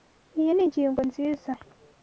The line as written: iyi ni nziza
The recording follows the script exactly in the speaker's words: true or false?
false